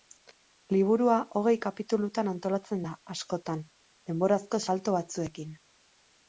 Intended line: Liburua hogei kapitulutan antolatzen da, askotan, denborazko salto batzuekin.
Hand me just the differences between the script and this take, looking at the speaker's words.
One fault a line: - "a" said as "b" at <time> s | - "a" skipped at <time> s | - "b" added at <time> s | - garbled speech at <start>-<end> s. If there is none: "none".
none